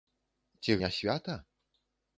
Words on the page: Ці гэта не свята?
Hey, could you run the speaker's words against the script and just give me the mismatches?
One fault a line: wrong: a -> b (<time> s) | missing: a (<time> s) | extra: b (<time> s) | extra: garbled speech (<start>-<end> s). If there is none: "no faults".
missing: гэта (0.8 s)